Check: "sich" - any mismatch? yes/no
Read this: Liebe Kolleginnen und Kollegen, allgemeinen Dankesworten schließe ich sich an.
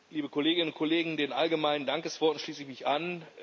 yes